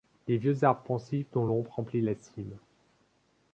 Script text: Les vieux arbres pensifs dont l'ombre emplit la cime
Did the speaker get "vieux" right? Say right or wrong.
right